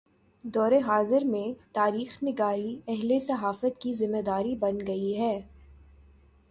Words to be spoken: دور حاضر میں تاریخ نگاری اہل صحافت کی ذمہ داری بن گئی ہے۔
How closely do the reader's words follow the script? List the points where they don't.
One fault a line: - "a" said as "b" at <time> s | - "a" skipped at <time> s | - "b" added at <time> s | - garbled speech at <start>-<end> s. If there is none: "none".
none